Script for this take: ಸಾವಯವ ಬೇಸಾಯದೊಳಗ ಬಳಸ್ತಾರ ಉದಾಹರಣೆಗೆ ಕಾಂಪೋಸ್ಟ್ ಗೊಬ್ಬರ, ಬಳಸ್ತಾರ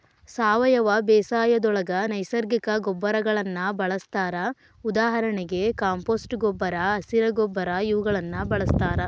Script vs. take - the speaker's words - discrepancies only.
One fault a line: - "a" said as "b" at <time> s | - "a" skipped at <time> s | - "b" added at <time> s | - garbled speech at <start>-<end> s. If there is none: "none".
- "ನೈಸರ್ಗಿಕ ಗೊಬ್ಬರಗಳನ್ನ" added at 2.1 s
- "ಹಸಿರ ಗೊಬ್ಬರ ಇವುಗಳನ್ನ" added at 7.0 s